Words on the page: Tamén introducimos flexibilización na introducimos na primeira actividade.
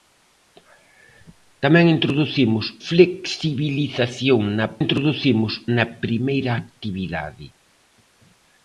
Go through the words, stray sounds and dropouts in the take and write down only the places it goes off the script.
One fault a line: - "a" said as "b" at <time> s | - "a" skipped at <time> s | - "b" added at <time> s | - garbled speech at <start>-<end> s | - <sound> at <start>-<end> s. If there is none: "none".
none